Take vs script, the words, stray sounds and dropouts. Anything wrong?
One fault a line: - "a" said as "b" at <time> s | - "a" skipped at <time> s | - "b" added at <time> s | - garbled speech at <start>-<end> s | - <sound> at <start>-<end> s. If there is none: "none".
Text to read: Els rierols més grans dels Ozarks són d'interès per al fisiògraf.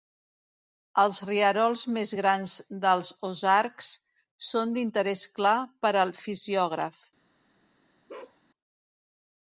- "clar" added at 5.4 s
- bark at 8.1-8.4 s